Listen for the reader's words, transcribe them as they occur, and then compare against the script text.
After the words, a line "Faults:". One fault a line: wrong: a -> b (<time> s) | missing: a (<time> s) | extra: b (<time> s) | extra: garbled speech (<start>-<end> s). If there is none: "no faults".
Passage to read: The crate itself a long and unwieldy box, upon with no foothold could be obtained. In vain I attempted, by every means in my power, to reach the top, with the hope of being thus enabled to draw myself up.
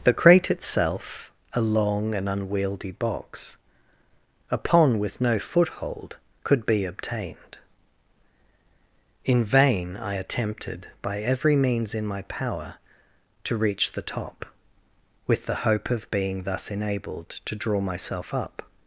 The crate itself a long and unwieldy box, upon with no foothold could be obtained. In vain I attempted, by every means in my power, to reach the top, with the hope of being thus enabled to draw myself up.
Faults:
no faults